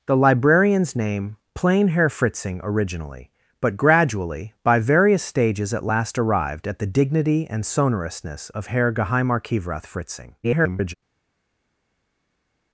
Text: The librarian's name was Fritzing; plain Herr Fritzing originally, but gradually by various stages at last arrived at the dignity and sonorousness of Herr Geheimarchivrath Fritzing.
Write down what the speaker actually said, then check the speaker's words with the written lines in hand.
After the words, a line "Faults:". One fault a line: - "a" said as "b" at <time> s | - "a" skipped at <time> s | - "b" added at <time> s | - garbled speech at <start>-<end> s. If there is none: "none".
The librarian's name; plain Herr Fritzing originally, but gradually by various stages at last arrived at the dignity and sonorousness of Herr Geheimarchivrath Fritzing. [garbled]
Faults:
- "was Fritzing" skipped at 1.4 s
- garbled speech at 10.4-10.9 s